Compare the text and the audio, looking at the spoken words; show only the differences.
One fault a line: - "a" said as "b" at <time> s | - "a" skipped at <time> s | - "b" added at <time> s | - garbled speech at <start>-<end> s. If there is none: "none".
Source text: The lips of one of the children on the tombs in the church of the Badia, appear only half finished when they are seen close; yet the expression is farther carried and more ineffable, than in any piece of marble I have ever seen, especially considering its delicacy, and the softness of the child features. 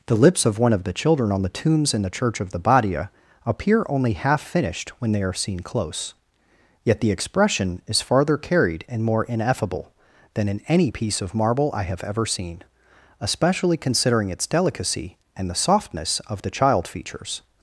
none